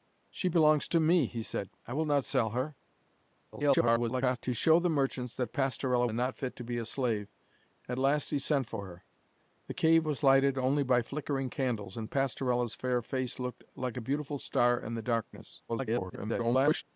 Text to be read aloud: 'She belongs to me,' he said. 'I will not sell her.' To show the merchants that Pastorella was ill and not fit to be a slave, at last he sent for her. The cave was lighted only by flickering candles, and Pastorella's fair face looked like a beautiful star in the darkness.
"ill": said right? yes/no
no